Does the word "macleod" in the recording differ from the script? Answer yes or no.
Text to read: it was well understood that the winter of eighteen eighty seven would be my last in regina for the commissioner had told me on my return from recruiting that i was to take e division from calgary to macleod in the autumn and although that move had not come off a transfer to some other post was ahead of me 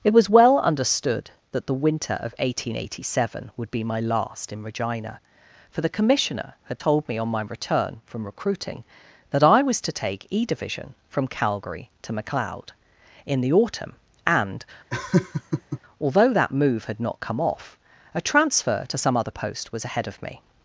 no